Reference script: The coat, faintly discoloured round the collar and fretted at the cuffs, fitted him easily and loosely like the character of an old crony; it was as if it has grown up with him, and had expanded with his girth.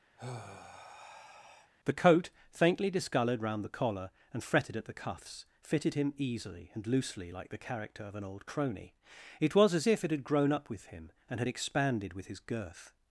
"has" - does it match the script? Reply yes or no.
no